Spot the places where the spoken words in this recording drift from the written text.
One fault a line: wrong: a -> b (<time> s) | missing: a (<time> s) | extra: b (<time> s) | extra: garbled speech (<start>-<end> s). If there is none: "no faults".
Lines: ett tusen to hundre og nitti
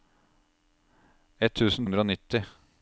missing: to (1.9 s)